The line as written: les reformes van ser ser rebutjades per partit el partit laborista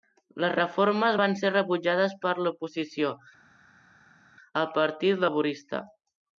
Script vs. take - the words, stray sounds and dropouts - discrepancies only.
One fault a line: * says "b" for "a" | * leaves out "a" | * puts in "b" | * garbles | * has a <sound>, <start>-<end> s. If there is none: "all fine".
* leaves out "ser"
* says "l'oposició" for "partit"